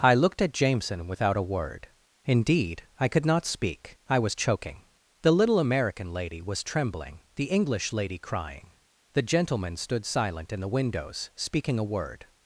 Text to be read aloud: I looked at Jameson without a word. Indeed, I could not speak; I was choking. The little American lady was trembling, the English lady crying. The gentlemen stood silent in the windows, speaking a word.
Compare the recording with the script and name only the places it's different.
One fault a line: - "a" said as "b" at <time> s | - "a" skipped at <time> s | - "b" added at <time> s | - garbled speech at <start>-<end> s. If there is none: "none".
none